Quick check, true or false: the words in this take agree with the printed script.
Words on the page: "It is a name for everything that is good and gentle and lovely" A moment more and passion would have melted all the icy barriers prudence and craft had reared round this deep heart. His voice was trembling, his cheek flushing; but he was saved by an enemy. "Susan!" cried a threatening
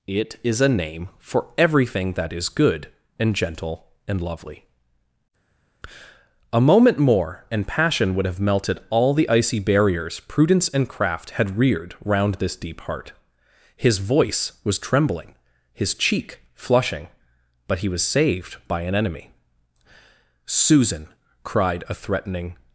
true